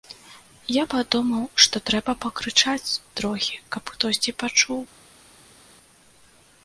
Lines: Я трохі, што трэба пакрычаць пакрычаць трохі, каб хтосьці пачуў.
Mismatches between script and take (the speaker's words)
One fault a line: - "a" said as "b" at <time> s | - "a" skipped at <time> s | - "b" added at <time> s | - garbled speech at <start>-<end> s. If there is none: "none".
- "трохі" said as "падумаў" at 0.9 s
- "пакрычаць" skipped at 2.9 s